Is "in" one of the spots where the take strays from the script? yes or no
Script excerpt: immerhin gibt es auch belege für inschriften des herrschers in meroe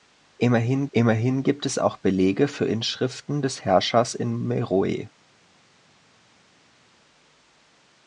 no